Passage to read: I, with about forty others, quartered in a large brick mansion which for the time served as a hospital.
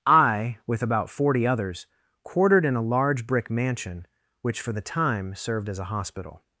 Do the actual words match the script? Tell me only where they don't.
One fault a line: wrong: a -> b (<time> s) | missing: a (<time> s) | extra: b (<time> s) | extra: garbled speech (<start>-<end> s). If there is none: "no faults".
no faults